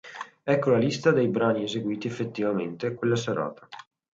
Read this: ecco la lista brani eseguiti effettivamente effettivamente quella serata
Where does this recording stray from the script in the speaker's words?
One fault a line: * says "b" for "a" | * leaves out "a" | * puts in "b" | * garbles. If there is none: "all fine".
* puts in "dei"
* leaves out "effettivamente"